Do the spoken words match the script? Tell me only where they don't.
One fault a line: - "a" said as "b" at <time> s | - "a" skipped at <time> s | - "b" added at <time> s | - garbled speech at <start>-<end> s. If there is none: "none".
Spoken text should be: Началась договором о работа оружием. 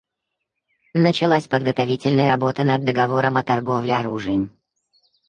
- "подготовительная работа над" added at 1.5 s
- "работа" said as "торговле" at 3.4 s